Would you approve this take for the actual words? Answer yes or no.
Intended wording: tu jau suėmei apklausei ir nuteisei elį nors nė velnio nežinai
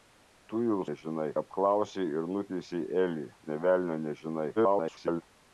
no